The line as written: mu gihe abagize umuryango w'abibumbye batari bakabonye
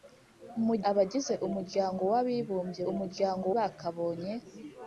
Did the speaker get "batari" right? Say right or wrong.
wrong